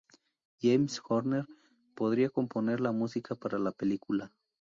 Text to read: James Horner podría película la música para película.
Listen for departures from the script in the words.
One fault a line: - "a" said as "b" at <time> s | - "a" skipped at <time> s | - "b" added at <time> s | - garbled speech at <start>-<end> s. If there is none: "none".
- "película" said as "componer" at 2.3 s
- "la" added at 3.6 s